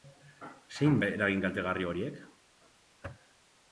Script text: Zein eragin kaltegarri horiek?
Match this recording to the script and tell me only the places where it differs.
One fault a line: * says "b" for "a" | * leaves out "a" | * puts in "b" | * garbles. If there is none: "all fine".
all fine